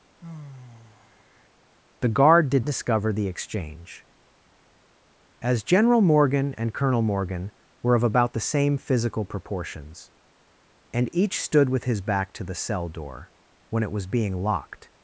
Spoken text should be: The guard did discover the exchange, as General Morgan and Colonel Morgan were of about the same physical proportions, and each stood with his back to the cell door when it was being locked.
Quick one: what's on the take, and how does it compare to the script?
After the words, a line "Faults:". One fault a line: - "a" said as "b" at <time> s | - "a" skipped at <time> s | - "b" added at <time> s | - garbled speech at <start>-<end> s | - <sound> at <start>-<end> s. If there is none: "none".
The guard did discover the exchange, as General Morgan and Colonel Morgan were of about the same physical proportions, and each stood with his back to the cell door when it was being locked.
Faults:
- sigh at 0.2-1.5 s